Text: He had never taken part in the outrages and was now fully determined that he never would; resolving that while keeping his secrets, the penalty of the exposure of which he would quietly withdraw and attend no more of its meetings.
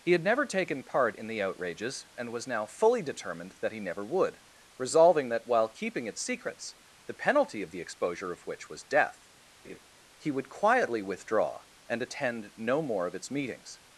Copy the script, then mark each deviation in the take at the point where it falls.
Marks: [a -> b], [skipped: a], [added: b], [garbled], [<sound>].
He had never taken part in the outrages and was now fully determined that he never would; resolving that while keeping [his -> its] secrets, the penalty of the exposure of which [added: was death] [laugh] he would quietly withdraw and attend no more of its meetings.